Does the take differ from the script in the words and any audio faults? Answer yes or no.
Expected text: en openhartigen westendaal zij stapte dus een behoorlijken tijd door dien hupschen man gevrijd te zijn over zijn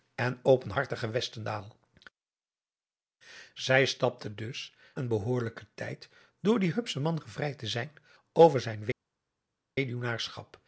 no